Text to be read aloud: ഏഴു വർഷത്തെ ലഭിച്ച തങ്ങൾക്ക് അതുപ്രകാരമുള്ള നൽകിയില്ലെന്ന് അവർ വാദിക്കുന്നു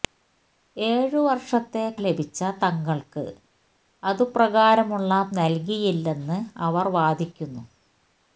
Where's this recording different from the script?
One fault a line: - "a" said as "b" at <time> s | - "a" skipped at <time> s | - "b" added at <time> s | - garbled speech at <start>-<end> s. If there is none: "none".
none